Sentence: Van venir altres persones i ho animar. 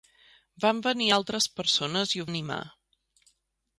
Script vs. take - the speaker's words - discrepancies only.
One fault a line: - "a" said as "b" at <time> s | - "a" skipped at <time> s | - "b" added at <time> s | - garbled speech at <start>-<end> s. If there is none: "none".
none